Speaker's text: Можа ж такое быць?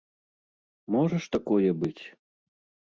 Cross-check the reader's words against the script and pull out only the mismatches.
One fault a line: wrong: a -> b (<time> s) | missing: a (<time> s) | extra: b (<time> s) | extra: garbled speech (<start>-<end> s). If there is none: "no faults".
no faults